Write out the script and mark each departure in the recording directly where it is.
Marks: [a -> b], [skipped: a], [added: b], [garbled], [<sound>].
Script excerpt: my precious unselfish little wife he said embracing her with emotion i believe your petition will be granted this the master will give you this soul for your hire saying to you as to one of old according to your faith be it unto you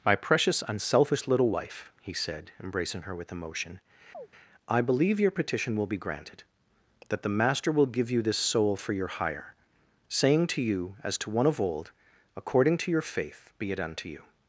my precious unselfish little wife he said embracing her with emotion [chirp] i believe your petition will be granted [this -> that] the master will give you this soul for your hire saying to you as to one of old according to your faith be it unto you